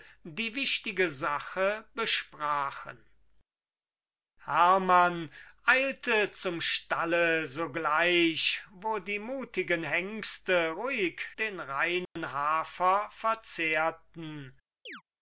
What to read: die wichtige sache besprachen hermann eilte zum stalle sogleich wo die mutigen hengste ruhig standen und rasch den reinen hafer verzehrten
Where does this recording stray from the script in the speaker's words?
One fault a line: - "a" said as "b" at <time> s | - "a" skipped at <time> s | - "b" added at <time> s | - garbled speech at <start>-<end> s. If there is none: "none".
- "standen und rasch" skipped at 11.3 s